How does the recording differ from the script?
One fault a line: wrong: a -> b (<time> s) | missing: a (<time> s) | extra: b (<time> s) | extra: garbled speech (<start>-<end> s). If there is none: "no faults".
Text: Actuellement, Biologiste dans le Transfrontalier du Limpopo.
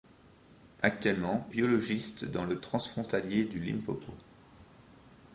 no faults